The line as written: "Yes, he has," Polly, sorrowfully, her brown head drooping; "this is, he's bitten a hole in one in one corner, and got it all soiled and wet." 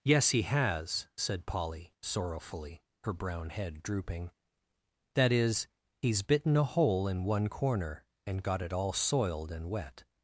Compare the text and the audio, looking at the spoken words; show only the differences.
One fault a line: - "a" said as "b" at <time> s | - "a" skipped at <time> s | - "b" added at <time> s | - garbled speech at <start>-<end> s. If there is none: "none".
- "said" added at 1.1 s
- "this" said as "that" at 5.1 s
- "in one" skipped at 7.5 s